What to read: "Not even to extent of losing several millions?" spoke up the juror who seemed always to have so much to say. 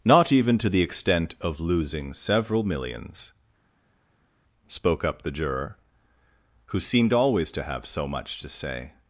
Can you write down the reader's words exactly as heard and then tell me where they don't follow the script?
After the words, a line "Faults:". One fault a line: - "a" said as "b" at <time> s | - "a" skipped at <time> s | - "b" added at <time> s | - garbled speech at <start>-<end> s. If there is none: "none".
"Not even to the extent of losing several millions?" spoke up the juror who seemed always to have so much to say.
Faults:
- "the" added at 0.7 s